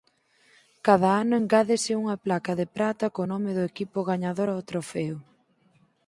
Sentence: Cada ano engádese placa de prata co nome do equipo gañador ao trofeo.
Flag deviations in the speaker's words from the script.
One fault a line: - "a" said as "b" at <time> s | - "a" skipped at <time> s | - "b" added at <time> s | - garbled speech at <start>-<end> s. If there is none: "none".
- "unha" added at 2.0 s